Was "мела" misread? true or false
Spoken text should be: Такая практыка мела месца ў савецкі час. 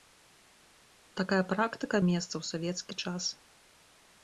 true